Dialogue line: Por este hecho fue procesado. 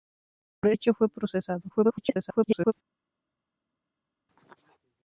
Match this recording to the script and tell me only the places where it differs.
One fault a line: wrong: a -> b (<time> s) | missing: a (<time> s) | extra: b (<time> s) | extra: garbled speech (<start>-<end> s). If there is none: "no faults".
missing: este (0.7 s)
extra: garbled speech (1.7-2.7 s)